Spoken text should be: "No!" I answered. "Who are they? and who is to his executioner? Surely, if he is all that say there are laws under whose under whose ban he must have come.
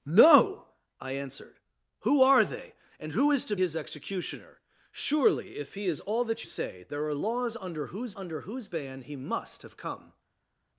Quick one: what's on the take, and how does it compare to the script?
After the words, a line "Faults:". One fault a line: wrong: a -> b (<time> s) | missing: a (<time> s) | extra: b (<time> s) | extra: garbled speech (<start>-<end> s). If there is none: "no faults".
"No!" I answered. "Who are they? and who is to his executioner? Surely, if he is all that say there are laws under whose under whose ban he must have come.
Faults:
no faults